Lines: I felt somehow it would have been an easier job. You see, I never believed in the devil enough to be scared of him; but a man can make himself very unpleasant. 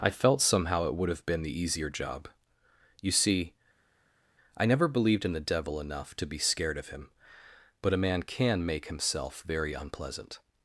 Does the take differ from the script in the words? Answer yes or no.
yes